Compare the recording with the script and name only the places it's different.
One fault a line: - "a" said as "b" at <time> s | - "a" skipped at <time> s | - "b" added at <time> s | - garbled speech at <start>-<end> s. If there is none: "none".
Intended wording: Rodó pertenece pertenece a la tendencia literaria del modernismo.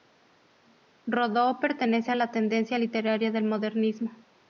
- "pertenece" skipped at 2.1 s